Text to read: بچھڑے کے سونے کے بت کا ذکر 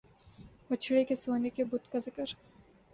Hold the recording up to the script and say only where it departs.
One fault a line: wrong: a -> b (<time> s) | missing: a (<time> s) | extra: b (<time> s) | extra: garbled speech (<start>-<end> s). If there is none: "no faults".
no faults